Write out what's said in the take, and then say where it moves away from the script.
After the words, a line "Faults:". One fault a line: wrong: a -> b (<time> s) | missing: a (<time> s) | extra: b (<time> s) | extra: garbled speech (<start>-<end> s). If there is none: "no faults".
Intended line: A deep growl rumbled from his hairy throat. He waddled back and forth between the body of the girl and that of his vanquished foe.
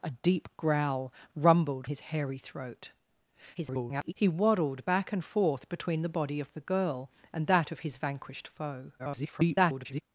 A deep growl rumbled his hairy throat. [garbled] He waddled back and forth between the body of the girl and that of his vanquished foe. [garbled]
Faults:
missing: from (1.9 s)
extra: garbled speech (3.5-4.1 s)
extra: garbled speech (9.0-10.0 s)